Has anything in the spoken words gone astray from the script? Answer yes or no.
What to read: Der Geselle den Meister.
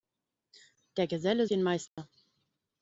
no